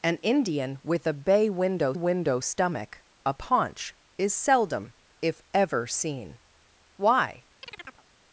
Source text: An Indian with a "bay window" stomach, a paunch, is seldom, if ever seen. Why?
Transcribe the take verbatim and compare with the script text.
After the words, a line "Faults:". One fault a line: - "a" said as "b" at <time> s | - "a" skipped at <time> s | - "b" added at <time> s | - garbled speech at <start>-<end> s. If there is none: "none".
An Indian with a "bay window window" stomach, a paunch, is seldom, if ever seen. Why?
Faults:
- "window" added at 1.9 s